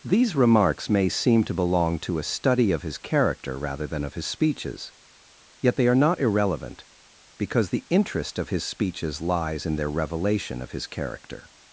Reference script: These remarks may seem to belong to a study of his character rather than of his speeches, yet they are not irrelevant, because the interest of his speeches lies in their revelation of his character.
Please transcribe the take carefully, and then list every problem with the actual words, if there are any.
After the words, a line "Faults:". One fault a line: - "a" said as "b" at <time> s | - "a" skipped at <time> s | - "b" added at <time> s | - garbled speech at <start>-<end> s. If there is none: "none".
These remarks may seem to belong to a study of his character rather than of his speeches, yet they are not irrelevant, because the interest of his speeches lies in their revelation of his character.
Faults:
none